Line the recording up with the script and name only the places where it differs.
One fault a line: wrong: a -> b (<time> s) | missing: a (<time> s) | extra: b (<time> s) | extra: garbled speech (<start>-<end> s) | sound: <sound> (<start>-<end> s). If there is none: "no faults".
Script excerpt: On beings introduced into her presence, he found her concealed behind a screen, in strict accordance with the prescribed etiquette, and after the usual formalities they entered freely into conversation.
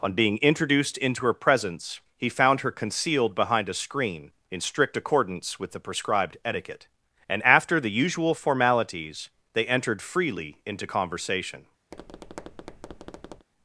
wrong: beings -> being (0.1 s)
sound: tap (11.9-13.5 s)